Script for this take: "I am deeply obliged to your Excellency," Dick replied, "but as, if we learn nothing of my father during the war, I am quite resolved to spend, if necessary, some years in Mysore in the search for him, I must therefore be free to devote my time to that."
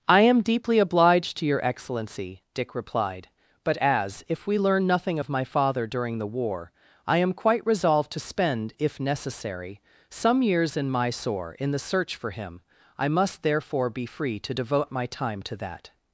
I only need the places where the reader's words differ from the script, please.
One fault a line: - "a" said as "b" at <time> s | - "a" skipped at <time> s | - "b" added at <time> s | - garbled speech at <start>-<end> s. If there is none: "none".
none